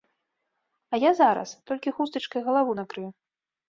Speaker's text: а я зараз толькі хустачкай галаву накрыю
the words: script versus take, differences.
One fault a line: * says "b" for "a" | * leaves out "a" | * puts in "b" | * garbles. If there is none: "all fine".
all fine